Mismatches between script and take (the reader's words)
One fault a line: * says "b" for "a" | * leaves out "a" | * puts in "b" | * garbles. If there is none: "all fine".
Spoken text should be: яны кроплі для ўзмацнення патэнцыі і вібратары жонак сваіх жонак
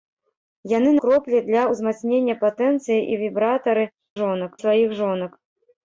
all fine